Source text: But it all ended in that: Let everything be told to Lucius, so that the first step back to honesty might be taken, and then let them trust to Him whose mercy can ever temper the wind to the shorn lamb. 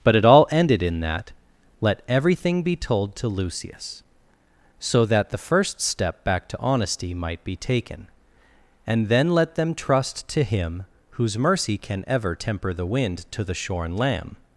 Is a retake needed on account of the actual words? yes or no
no